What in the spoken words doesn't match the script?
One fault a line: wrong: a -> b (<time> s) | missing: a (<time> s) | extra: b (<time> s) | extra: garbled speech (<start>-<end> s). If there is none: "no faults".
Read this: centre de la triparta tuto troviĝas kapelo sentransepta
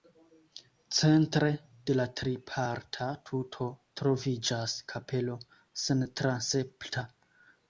no faults